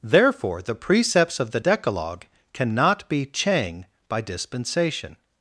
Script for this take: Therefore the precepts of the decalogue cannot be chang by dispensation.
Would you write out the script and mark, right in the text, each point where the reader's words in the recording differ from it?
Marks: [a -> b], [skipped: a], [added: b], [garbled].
Therefore the precepts of the decalogue cannot be chang by dispensation.